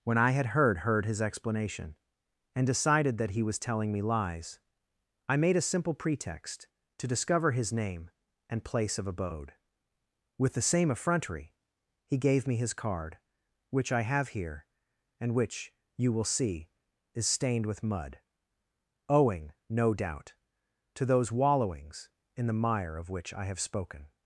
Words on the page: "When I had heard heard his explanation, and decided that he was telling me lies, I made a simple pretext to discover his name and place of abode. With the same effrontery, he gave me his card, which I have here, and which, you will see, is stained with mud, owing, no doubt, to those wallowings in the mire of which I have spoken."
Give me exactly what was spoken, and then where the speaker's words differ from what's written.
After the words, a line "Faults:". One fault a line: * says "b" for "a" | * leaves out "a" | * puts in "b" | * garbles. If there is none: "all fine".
"When I had heard heard his explanation, and decided that he was telling me lies, I made a simple pretext to discover his name and place of abode. With the same effrontery, he gave me his card, which I have here, and which, you will see, is stained with mud, owing, no doubt, to those wallowings in the mire of which I have spoken."
Faults:
all fine